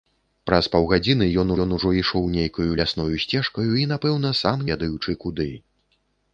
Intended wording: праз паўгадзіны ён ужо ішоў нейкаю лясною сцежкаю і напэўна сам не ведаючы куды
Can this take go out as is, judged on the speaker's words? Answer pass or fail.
fail